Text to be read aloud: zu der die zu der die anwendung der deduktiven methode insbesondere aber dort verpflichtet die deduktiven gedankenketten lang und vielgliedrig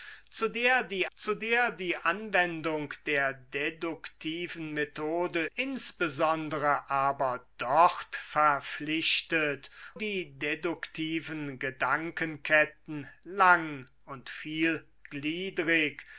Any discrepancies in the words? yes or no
no